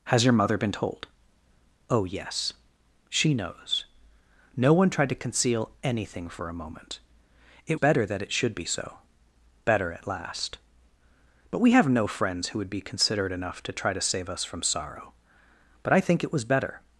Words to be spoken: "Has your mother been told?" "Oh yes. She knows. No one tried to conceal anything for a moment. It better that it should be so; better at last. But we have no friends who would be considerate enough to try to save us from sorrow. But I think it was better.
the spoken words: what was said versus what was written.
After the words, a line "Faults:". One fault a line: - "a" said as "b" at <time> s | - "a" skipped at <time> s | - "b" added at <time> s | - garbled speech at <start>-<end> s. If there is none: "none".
"Has your mother been told?" "Oh yes. She knows. No one tried to conceal anything for a moment. It better that it should be so; better at last. But we have no friends who would be considerate enough to try to save us from sorrow. But I think it was better.
Faults:
none